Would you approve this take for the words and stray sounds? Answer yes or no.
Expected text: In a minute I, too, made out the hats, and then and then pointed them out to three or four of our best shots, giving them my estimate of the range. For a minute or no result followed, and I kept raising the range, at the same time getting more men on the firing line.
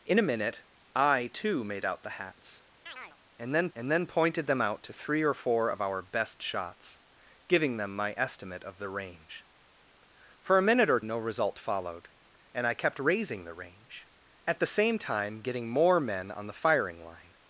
no